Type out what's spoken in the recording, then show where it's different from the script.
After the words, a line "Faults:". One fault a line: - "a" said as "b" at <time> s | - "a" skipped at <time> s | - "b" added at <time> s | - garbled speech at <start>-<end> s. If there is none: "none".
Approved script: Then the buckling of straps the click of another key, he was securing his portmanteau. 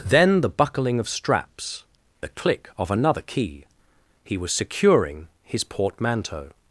Then the buckling of straps the click of another key, he was securing his portmanteau.
Faults:
none